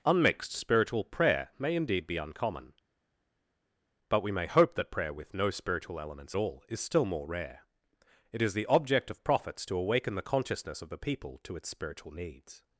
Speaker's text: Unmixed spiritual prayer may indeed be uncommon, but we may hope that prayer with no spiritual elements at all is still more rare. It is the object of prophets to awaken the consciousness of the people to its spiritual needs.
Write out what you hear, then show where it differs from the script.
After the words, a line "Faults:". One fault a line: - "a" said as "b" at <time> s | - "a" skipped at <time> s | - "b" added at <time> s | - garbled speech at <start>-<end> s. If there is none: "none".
Unmixed spiritual prayer may indeed be uncommon, but we may hope that prayer with no spiritual elements all is still more rare. It is the object of prophets to awaken the consciousness of the people to its spiritual needs.
Faults:
- "at" skipped at 6.3 s